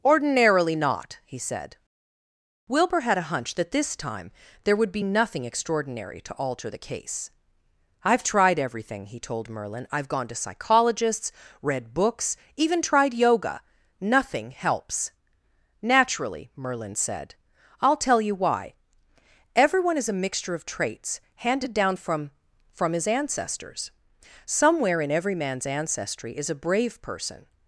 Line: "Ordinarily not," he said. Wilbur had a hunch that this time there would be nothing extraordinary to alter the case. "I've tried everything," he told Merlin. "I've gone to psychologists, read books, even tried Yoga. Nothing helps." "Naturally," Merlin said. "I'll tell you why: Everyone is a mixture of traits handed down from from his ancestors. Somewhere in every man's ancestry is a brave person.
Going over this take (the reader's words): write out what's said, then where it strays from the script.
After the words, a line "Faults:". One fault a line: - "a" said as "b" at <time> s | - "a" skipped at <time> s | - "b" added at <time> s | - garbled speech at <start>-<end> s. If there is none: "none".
"Ordinarily not," he said. Wilbur had a hunch that this time there would be nothing extraordinary to alter the case. "I've tried everything," he told Merlin. "I've gone to psychologists, read books, even tried Yoga. Nothing helps." "Naturally," Merlin said. "I'll tell you why: Everyone is a mixture of traits handed down from from his ancestors. Somewhere in every man's ancestry is a brave person.
Faults:
none